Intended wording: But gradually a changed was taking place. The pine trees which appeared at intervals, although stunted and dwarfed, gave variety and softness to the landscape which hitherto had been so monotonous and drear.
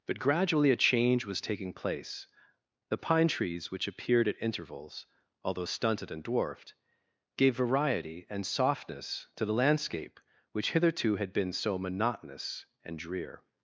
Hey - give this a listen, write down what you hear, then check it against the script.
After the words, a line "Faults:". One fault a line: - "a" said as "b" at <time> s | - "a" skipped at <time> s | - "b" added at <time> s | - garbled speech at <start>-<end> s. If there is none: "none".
But gradually a change was taking place. The pine trees which appeared at intervals, although stunted and dwarfed, gave variety and softness to the landscape which hitherto had been so monotonous and drear.
Faults:
- "changed" said as "change" at 0.8 s